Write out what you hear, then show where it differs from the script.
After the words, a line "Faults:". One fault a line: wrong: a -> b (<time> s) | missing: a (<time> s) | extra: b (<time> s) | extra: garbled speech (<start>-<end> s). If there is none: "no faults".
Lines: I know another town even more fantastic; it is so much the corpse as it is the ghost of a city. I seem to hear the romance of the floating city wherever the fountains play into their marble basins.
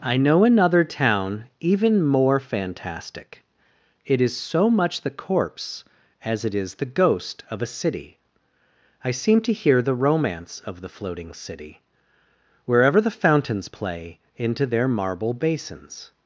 I know another town even more fantastic; it is so much the corpse as it is the ghost of a city. I seem to hear the romance of the floating city wherever the fountains play into their marble basins.
Faults:
no faults